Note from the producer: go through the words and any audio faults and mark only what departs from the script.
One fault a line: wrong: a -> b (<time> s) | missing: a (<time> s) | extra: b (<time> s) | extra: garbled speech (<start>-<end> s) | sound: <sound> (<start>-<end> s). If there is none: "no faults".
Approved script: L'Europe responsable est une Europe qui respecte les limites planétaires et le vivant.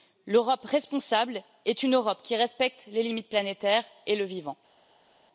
no faults